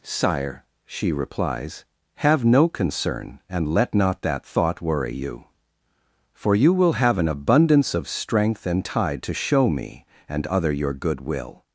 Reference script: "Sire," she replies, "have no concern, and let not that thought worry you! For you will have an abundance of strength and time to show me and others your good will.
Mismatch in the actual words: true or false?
true